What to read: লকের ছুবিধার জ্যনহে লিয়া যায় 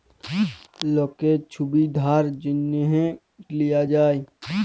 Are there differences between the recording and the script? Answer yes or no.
no